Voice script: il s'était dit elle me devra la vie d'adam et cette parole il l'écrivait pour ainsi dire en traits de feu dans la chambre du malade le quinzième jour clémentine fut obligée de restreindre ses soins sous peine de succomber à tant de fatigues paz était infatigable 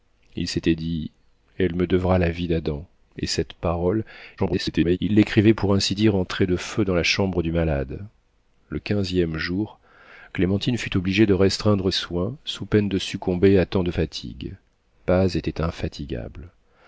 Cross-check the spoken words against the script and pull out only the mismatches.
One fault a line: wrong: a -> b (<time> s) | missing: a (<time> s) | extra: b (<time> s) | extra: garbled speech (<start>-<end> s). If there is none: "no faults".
extra: garbled speech (4.4-5.0 s)
missing: ses (11.9 s)